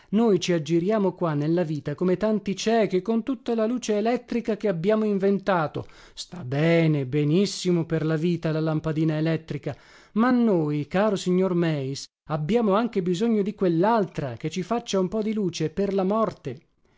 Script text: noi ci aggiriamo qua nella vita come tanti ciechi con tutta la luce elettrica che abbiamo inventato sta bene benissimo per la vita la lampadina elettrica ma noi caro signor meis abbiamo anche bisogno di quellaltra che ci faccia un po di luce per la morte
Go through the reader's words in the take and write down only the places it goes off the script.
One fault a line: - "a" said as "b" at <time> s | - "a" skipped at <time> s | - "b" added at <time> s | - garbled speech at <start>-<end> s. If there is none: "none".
none